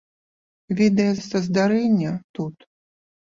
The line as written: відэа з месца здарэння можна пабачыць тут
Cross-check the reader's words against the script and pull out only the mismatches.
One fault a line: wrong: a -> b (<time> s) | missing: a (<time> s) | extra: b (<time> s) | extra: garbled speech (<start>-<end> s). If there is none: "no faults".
missing: з (1.1 s)
missing: можна пабачыць (2.1 s)